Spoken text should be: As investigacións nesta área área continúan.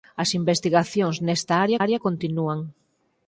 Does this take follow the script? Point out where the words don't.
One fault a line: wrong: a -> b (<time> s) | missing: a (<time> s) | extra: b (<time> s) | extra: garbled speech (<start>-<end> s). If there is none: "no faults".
no faults